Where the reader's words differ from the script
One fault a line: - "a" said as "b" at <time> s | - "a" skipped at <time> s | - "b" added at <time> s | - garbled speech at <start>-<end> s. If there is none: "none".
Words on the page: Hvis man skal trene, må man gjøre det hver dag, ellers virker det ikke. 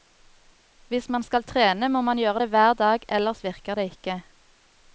none